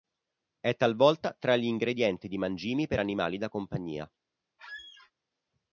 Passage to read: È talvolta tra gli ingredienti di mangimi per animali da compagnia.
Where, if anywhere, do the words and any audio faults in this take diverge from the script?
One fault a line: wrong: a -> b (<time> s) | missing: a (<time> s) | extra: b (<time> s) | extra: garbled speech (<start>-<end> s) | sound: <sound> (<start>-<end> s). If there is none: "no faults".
sound: squeak (4.6-5.1 s)